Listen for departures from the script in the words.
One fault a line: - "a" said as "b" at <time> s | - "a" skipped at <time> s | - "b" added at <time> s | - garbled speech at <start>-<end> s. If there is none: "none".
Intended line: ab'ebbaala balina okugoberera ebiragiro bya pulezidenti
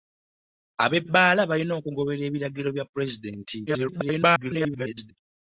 - garbled speech at 3.7-5.1 s